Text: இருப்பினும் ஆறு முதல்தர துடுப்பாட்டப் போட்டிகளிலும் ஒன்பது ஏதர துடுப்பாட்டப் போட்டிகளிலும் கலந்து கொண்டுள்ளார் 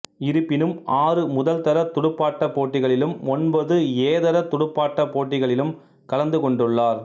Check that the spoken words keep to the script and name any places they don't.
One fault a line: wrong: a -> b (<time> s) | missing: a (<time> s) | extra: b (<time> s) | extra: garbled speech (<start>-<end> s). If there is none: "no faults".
no faults